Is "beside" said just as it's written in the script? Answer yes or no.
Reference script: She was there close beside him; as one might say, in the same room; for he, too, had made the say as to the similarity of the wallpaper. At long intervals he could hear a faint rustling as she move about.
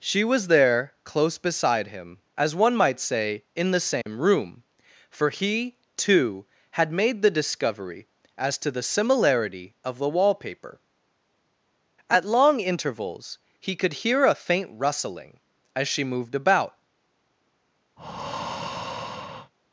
yes